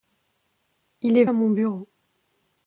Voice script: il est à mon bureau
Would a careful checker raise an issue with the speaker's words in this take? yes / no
no